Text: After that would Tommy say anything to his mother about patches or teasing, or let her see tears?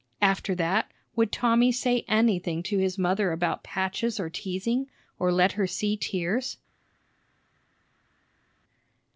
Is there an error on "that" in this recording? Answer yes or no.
no